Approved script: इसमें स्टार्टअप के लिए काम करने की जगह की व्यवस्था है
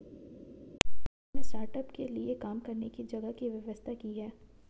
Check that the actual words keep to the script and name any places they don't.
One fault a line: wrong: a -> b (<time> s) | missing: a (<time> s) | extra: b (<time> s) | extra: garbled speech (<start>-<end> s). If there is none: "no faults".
extra: की (4.0 s)